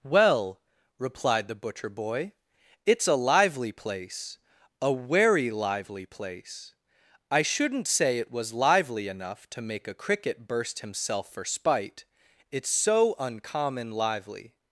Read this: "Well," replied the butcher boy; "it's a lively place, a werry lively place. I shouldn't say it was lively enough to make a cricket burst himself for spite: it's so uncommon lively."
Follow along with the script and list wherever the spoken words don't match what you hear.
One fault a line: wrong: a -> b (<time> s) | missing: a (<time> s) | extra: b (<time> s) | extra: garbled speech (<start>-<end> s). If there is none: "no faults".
no faults